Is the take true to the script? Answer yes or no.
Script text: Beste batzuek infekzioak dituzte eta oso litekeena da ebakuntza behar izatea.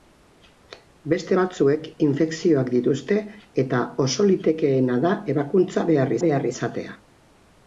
no